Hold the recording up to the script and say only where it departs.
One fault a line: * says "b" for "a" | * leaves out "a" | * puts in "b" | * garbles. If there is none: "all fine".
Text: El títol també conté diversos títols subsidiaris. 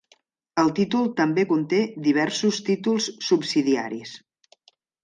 all fine